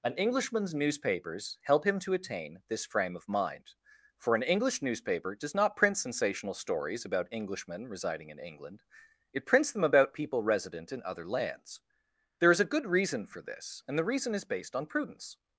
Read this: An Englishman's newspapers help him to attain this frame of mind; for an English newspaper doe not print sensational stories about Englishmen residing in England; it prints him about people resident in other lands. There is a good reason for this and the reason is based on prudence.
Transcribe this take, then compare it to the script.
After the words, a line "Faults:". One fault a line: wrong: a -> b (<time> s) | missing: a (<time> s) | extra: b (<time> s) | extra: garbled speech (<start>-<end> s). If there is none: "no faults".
An Englishman's newspapers help him to attain this frame of mind; for an English newspaper does not print sensational stories about Englishmen residing in England; it prints them about people resident in other lands. There is a good reason for this and the reason is based on prudence.
Faults:
wrong: doe -> does (5.3 s)
wrong: him -> them (9.7 s)